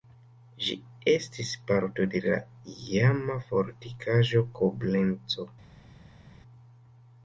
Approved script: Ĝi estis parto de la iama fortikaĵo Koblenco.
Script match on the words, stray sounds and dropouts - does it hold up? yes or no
yes